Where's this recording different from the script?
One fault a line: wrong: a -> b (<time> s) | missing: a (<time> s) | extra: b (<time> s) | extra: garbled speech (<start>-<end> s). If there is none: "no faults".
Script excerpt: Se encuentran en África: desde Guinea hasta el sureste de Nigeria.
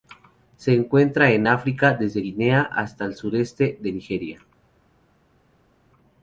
no faults